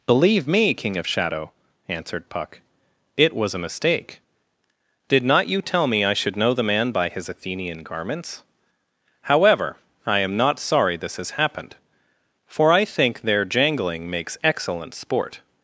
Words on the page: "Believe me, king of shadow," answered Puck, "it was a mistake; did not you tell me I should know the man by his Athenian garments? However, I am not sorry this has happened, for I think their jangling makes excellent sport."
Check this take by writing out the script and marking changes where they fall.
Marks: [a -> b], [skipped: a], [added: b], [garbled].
"Believe me, king of shadow," answered Puck, "it was a mistake; did not you tell me I should know the man by his Athenian garments? However, I am not sorry this has happened, for I think their jangling makes excellent sport."